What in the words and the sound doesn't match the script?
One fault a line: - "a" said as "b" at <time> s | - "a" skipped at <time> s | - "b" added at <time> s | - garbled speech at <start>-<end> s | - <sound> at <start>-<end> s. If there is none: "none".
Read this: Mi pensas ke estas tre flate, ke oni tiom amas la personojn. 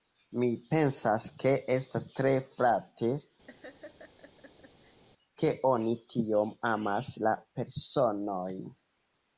- laugh at 3.4-5.0 s